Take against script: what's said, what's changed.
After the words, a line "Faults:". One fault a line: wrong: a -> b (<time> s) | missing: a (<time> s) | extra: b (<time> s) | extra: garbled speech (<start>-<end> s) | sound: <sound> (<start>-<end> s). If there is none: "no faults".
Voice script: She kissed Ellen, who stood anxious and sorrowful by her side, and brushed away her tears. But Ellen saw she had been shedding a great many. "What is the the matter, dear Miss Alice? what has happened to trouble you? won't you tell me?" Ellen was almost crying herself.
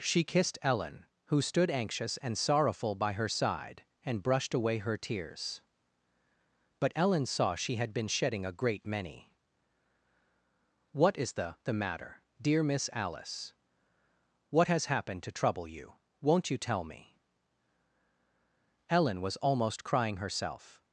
She kissed Ellen, who stood anxious and sorrowful by her side, and brushed away her tears. But Ellen saw she had been shedding a great many. "What is the the matter, dear Miss Alice? what has happened to trouble you? won't you tell me?" Ellen was almost crying herself.
Faults:
no faults